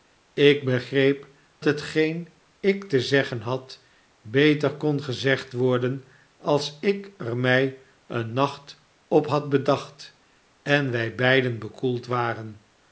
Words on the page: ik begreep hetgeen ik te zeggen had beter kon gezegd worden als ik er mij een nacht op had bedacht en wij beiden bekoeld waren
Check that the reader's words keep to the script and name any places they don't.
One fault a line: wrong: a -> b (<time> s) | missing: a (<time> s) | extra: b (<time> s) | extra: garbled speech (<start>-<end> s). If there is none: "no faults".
no faults